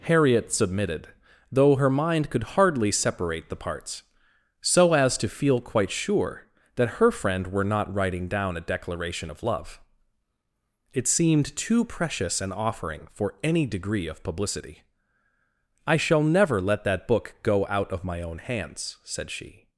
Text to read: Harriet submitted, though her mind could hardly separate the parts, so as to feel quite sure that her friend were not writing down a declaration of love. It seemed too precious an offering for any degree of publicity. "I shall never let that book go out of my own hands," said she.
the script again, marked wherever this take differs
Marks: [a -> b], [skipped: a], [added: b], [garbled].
Harriet submitted, though her mind could hardly separate the parts, so as to feel quite sure that her friend were not writing down a declaration of love. It seemed too precious an offering for any degree of publicity. "I shall never let that book go out of my own hands," said she.